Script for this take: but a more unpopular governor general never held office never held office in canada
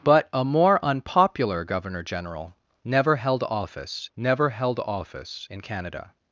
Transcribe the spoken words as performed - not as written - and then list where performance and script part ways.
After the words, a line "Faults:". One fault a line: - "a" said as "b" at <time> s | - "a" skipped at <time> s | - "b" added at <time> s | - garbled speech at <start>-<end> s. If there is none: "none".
but a more unpopular governor general never held office never held office in canada
Faults:
none